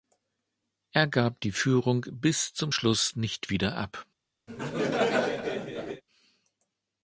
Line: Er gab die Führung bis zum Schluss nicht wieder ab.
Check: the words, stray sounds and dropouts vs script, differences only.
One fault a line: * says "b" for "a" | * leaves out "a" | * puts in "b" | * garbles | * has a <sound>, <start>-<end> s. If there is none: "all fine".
* has a laugh, 4.5-6.0 s